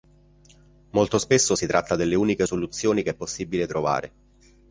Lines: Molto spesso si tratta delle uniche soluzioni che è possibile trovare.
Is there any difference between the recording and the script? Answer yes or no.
no